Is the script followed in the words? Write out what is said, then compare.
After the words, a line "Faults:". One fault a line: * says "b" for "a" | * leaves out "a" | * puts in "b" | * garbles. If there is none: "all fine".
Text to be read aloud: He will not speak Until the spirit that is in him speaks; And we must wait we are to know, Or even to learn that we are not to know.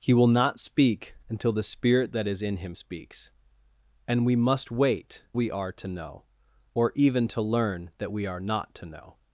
He will not speak Until the spirit that is in him speaks; And we must wait we are to know, Or even to learn that we are not to know.
Faults:
all fine